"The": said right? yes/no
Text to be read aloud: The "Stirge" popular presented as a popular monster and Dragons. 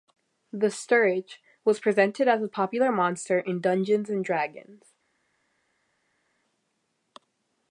yes